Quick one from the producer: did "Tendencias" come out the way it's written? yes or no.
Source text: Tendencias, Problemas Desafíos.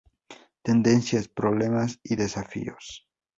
yes